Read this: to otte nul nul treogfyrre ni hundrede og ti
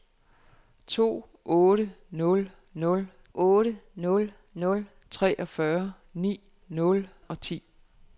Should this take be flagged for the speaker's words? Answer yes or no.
yes